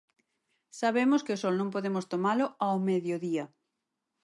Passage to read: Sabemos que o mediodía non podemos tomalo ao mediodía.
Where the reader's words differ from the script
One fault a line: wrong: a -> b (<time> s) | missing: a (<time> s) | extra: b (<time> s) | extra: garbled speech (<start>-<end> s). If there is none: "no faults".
wrong: mediodía -> sol (1.4 s)